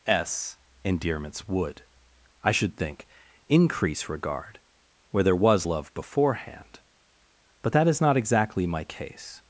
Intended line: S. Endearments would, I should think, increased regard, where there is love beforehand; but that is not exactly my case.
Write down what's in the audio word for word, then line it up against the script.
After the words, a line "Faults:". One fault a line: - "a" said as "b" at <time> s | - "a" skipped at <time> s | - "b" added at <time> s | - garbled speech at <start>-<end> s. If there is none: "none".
S. Endearments would, I should think, increase regard, where there was love beforehand; but that is not exactly my case.
Faults:
- "increased" said as "increase" at 3.5 s
- "is" said as "was" at 5.3 s